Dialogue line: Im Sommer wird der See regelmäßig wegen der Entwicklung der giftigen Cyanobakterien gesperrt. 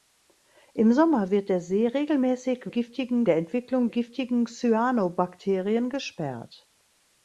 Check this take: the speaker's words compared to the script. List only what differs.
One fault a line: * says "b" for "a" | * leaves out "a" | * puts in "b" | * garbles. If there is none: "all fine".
* says "giftigen" for "wegen"
* leaves out "der"